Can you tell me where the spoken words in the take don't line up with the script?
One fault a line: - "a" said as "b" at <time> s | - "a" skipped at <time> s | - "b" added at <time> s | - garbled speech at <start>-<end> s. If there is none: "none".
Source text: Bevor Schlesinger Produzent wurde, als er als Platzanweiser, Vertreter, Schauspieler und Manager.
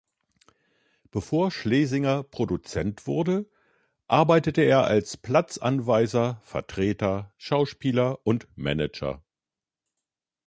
- "als" said as "arbeitete" at 4.1 s